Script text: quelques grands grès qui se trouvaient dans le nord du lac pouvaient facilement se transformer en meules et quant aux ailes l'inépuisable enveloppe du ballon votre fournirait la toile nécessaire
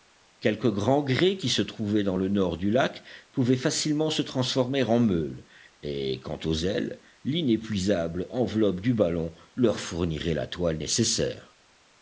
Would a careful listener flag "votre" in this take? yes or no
yes